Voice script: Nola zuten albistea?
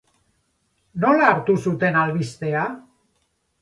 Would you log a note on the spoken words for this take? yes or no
yes